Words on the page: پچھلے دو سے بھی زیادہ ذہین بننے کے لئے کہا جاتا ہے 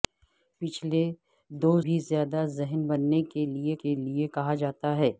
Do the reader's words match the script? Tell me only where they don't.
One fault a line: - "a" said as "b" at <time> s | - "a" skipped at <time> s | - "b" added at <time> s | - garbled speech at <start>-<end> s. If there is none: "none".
- "سے" skipped at 1.7 s
- "کے لئے" added at 3.8 s